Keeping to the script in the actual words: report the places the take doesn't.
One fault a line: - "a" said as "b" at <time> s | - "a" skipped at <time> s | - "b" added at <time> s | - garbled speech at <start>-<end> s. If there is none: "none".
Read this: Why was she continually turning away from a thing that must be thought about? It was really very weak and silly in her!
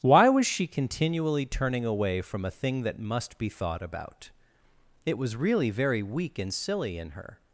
none